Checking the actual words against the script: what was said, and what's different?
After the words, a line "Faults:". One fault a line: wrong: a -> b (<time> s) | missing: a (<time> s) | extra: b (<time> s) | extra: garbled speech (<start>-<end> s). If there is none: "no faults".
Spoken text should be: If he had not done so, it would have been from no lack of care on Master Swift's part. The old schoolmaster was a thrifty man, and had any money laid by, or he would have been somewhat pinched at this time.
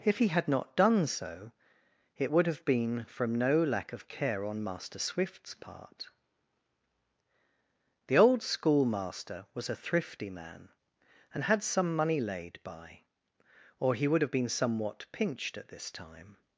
If he had not done so, it would have been from no lack of care on Master Swift's part. The old schoolmaster was a thrifty man, and had some money laid by, or he would have been somewhat pinched at this time.
Faults:
wrong: any -> some (11.6 s)